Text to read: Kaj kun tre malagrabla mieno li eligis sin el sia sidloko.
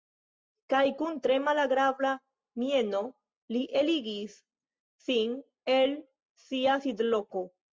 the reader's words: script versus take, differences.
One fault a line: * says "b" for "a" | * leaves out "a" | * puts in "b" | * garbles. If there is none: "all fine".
all fine